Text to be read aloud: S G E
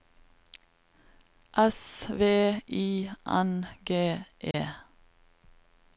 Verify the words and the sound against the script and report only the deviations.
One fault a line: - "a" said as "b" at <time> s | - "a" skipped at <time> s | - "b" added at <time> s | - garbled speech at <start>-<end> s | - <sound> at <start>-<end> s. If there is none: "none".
- "V I N" added at 2.1 s
- dropout at 4.5-4.5 s